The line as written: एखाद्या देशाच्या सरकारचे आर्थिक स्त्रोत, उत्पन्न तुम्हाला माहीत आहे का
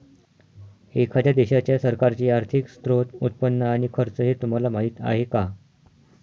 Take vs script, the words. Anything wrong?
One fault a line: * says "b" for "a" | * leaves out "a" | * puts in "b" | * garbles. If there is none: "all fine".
* puts in "आणि खर्च हे"